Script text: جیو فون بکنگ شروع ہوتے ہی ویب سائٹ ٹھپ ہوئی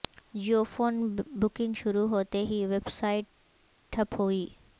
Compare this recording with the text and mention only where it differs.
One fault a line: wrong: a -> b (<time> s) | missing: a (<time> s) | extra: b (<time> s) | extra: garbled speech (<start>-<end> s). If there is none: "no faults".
no faults